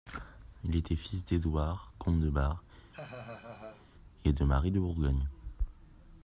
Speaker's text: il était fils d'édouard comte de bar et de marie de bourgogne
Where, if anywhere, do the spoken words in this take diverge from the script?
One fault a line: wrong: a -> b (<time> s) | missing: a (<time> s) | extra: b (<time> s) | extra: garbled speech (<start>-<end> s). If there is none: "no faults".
no faults